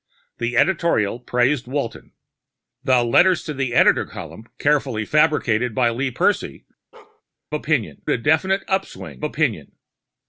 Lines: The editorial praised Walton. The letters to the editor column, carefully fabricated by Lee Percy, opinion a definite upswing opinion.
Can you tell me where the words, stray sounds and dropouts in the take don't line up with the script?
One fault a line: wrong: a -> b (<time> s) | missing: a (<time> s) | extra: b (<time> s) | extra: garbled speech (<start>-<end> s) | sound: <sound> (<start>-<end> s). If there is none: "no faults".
sound: bark (6.9-7.2 s)